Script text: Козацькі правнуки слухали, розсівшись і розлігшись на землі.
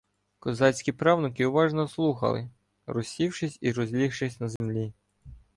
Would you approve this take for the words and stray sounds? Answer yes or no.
no